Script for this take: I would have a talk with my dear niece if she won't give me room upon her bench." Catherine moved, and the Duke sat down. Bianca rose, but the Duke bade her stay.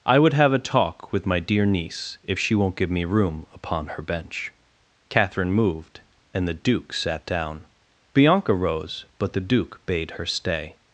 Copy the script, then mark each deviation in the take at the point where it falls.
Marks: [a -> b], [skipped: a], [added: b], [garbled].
I would have a talk with my dear niece if she won't give me room upon her bench." Catherine moved, and the Duke sat down. Bianca rose, but the Duke bade her stay.